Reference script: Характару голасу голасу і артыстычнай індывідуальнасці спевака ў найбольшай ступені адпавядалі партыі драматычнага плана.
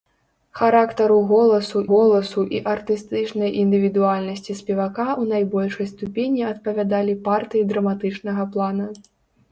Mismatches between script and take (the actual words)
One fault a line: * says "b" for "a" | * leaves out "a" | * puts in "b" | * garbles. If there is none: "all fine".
all fine